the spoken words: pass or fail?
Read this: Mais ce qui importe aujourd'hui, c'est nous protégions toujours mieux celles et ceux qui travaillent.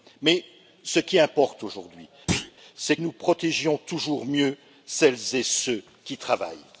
pass